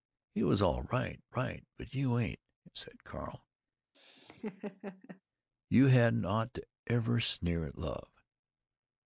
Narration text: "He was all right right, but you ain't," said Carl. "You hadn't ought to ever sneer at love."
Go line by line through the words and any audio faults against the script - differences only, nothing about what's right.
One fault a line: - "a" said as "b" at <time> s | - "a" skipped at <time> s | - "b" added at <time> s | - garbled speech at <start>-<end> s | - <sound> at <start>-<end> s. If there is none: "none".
- laugh at 3.9-5.2 s